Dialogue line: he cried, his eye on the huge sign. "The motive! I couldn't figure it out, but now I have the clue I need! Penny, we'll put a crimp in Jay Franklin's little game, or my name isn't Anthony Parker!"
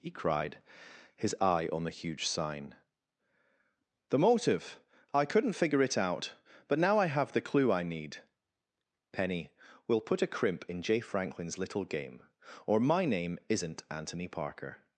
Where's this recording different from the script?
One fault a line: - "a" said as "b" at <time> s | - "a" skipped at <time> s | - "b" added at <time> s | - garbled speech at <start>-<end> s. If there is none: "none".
none